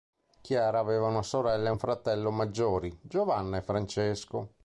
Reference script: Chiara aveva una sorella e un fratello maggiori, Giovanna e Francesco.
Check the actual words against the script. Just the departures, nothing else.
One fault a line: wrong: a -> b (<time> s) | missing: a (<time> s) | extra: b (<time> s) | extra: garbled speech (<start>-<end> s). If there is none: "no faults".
no faults